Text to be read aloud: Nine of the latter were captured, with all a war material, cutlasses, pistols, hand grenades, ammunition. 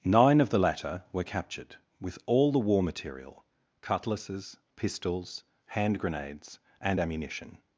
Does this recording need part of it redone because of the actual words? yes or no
yes